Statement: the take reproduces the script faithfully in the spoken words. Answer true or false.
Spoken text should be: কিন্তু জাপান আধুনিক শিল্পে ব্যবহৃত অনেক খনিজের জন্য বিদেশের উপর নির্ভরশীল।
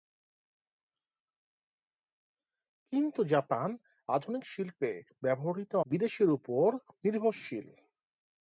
false